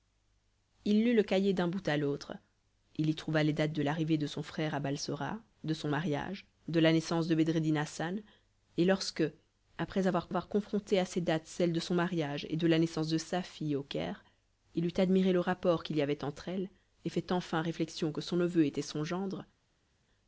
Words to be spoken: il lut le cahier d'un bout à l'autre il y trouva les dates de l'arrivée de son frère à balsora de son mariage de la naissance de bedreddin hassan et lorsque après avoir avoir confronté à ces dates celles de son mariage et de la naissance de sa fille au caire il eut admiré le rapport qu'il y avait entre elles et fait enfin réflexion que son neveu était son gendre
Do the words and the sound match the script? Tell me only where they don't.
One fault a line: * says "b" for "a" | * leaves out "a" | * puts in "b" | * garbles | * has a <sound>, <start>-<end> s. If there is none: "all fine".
all fine